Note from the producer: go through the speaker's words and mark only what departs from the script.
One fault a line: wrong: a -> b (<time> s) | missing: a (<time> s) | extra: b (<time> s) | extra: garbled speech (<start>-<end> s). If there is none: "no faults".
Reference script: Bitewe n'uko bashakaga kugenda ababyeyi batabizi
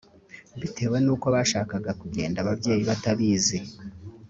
no faults